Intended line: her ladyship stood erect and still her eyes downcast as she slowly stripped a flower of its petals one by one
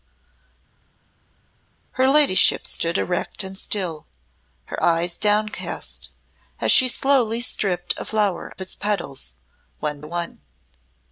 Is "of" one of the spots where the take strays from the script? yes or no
yes